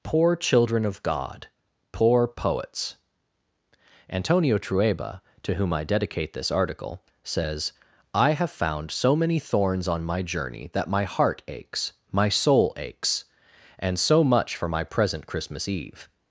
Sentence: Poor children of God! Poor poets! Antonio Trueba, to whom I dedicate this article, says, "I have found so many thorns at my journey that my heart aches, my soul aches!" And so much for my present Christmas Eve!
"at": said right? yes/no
no